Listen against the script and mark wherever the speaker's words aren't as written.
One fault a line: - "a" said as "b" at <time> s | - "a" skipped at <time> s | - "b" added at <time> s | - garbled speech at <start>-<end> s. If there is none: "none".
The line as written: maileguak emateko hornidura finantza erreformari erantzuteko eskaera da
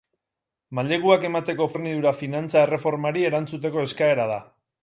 none